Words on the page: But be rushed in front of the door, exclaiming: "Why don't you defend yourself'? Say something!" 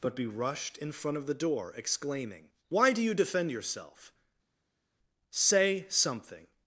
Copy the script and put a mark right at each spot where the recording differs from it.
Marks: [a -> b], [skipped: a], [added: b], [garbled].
But be rushed in front of the door, exclaiming: "Why [don't -> do] you defend yourself'? Say something!"